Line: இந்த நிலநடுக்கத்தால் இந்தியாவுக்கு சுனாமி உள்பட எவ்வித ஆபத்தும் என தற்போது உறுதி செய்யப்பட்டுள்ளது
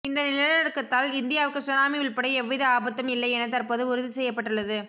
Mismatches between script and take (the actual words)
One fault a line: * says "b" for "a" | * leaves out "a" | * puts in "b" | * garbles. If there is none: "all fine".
* puts in "இல்லை"